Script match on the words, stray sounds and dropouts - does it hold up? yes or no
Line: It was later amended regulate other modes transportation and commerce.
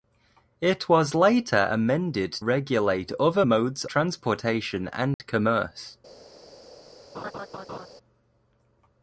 no